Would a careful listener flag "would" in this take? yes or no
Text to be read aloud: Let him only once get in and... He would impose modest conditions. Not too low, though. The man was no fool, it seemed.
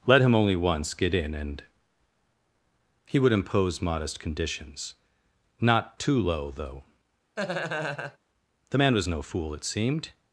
no